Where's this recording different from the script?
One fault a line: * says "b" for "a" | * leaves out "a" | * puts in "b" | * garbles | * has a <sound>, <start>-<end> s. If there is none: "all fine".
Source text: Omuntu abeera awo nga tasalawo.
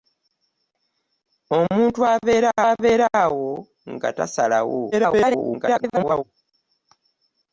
* puts in "abeera"
* garbles